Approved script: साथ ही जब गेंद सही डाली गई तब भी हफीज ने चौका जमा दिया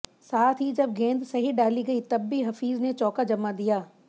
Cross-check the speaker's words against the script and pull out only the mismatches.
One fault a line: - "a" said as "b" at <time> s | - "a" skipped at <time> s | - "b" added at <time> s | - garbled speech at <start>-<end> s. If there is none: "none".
none